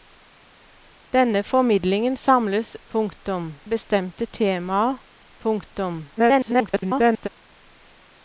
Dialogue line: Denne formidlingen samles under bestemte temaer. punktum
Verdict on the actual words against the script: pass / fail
fail